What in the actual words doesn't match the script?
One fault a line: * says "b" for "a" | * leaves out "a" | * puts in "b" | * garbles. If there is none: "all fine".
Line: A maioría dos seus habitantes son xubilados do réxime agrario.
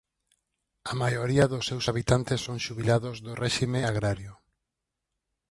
all fine